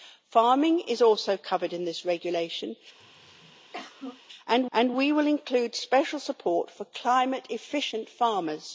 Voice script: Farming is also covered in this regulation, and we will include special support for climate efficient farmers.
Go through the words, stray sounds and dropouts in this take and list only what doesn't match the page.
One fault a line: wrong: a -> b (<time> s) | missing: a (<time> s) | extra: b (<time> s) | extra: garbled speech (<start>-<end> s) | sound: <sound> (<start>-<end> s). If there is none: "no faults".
sound: throat clearing (3.0-4.2 s)
extra: and (4.7 s)